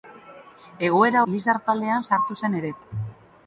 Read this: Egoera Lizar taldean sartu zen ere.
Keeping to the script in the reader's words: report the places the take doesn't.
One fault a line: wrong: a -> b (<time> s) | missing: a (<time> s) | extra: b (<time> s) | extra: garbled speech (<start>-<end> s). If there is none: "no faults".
no faults